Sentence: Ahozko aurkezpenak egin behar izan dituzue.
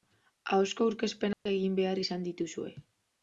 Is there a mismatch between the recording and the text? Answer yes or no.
no